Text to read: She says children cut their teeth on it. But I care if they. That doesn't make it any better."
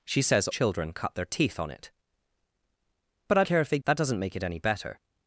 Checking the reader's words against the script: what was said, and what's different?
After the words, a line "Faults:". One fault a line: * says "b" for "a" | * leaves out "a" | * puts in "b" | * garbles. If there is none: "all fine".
She says children cut their teeth on it. But I care if they. That doesn't make it any better."
Faults:
all fine